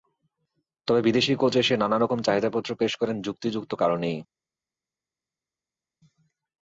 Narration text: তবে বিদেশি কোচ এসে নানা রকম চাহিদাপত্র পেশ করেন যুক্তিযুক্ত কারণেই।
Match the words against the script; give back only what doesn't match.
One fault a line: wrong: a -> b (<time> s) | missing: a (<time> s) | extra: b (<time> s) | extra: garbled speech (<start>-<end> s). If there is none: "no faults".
no faults